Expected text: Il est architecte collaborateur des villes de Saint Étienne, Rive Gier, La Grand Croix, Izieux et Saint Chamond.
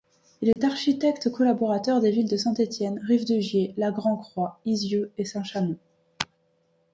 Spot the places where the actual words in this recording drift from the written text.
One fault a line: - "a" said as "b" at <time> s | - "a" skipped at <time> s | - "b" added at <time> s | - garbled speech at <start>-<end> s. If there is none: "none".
- "de" added at 3.3 s